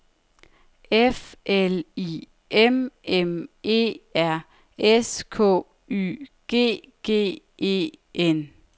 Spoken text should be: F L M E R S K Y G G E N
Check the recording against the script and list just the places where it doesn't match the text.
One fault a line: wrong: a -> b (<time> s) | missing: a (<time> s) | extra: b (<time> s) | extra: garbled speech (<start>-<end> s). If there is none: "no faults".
extra: I M (1.9 s)